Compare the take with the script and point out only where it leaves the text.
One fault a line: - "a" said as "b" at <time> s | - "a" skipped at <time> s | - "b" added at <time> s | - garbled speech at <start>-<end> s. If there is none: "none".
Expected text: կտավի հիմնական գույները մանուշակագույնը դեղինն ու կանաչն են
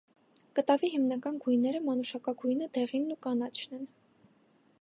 none